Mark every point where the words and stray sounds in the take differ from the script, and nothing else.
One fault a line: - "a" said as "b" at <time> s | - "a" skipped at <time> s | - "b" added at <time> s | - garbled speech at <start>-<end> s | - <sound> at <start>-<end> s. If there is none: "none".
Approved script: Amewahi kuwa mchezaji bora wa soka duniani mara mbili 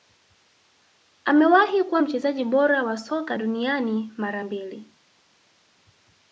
none